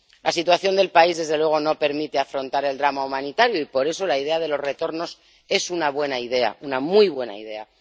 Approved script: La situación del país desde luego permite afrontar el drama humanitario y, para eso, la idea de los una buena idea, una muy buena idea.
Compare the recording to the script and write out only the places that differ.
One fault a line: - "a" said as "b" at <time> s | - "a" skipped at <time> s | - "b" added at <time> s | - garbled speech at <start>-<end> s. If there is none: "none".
- "no" added at 1.6 s
- "para" said as "por" at 3.6 s
- "retornos es" added at 4.6 s